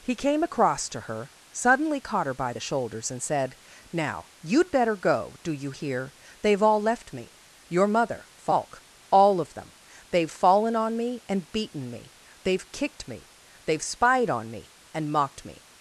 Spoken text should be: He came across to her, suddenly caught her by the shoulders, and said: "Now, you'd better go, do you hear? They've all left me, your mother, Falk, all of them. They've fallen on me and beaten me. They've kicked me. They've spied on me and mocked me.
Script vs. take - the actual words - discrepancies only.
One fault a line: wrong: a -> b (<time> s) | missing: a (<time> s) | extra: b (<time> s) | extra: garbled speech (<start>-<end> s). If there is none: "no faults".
no faults